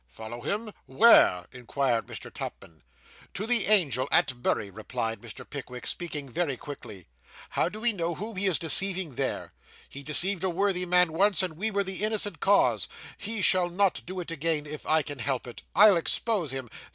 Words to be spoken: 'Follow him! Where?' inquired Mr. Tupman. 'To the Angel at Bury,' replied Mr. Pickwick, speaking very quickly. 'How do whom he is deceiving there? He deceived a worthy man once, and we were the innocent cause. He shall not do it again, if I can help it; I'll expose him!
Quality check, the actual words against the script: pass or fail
fail